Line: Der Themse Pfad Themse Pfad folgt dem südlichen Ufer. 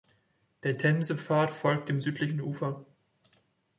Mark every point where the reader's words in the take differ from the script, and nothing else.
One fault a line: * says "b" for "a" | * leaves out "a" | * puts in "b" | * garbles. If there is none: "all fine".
* leaves out "Themse Pfad"